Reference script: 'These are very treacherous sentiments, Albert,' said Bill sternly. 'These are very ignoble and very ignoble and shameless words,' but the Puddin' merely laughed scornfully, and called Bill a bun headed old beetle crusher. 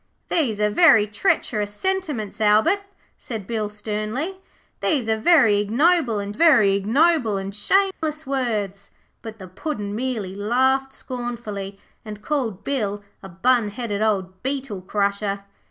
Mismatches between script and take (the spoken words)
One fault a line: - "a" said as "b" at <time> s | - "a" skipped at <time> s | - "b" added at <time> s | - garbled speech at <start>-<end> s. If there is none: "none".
none